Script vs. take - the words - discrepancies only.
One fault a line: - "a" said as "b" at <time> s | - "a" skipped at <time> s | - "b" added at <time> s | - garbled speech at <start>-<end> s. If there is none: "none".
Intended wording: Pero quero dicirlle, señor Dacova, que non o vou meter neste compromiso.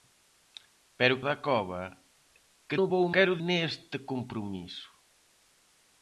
- "quero dicirlle señor" skipped at 1.2 s
- "non" skipped at 2.8 s
- "meter" said as "quero" at 3.1 s